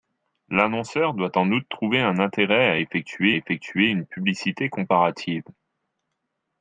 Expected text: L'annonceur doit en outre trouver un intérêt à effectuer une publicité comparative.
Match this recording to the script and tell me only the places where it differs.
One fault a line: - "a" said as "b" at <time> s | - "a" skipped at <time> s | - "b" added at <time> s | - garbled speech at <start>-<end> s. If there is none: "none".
- "effectuer" added at 3.3 s